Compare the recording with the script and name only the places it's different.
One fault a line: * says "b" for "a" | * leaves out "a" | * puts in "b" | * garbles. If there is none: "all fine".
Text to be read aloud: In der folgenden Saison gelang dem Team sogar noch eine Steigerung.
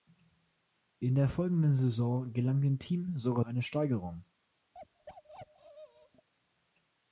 * leaves out "noch"